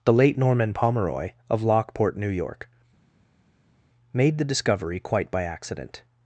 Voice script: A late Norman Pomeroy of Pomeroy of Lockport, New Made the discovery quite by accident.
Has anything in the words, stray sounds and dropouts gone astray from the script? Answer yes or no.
yes